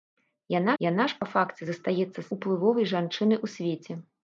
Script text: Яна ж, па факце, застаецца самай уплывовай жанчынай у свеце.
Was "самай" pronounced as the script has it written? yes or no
no